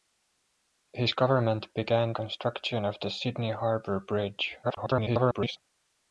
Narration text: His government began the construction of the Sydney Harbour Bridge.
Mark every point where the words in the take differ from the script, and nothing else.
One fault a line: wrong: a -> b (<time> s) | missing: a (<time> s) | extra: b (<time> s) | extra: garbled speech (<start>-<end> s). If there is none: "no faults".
missing: the (2.1 s)
extra: garbled speech (4.6-5.6 s)